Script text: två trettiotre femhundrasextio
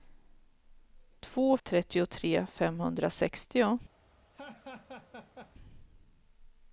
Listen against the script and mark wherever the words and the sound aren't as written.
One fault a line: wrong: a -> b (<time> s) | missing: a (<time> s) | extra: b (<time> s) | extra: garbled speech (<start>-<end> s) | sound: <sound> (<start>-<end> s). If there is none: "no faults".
sound: laugh (4.3-5.5 s)